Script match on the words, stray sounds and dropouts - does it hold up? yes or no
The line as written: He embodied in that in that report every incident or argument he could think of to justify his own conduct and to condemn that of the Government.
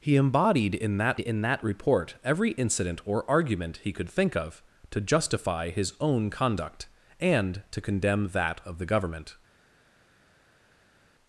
yes